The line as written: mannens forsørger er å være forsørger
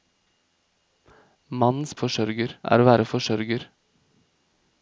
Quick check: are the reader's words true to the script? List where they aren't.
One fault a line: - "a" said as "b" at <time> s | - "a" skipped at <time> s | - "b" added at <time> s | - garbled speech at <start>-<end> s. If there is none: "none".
none